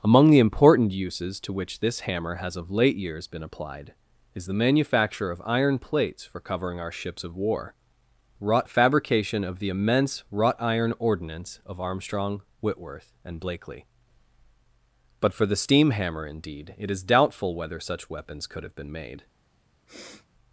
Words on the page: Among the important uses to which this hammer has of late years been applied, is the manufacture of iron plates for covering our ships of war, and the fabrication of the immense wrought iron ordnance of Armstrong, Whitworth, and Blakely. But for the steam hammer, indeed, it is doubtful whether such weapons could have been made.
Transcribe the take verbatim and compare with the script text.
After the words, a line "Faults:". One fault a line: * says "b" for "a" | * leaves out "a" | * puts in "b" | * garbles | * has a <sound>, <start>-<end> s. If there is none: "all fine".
Among the important uses to which this hammer has of late years been applied, is the manufacture of iron plates for covering our ships of war, wrought the fabrication of the immense wrought iron ordnance of Armstrong, Whitworth, and Blakely. But for the steam hammer, indeed, it is doubtful whether such weapons could have been made.
Faults:
* says "wrought" for "and"
* has a sniff, 19.9-20.3 s